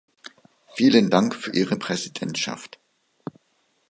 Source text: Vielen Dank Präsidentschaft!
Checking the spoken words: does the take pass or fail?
fail